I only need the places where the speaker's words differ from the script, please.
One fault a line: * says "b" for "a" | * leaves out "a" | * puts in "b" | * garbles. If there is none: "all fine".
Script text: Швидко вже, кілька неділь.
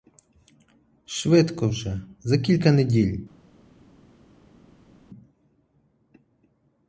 * puts in "за"